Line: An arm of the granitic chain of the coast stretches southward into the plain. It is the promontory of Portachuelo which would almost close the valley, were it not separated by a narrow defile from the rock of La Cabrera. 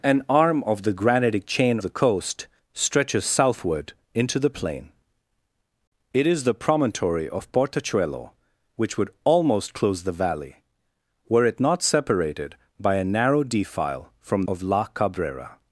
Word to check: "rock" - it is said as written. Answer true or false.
false